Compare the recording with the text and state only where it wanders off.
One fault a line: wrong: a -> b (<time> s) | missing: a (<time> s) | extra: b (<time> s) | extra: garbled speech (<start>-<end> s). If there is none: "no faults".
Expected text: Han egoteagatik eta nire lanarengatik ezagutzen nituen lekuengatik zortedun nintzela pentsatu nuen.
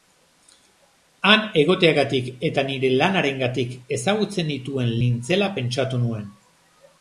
missing: lekuengatik zortedun (4.9 s)